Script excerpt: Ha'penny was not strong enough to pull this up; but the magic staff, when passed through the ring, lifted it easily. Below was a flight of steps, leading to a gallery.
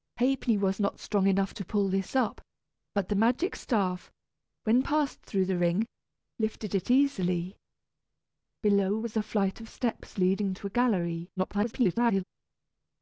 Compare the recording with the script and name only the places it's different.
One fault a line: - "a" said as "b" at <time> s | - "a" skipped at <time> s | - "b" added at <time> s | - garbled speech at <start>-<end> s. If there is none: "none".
- garbled speech at 11.4-12.2 s